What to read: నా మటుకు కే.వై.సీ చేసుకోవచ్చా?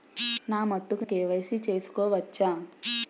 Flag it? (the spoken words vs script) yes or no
no